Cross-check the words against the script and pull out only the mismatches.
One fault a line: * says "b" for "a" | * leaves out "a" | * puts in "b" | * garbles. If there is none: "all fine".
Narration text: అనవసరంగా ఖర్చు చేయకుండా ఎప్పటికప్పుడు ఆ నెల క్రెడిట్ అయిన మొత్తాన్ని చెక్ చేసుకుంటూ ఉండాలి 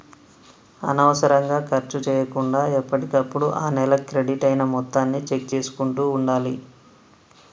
all fine